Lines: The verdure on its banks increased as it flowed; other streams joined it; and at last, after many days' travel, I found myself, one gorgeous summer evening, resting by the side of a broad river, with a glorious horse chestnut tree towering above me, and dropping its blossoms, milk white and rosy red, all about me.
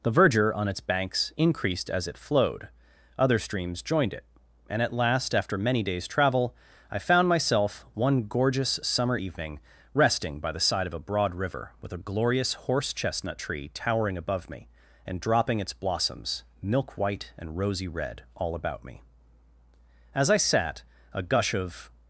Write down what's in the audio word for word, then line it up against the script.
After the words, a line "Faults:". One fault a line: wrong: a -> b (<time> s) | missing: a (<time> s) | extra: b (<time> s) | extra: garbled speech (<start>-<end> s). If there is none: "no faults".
The verdure on its banks increased as it flowed; other streams joined it; and at last, after many days' travel, I found myself, one gorgeous summer evening, resting by the side of a broad river, with a glorious horse chestnut tree towering above me, and dropping its blossoms, milk white and rosy red, all about me. As I sat, a gush of
Faults:
extra: As I sat a gush of (20.1 s)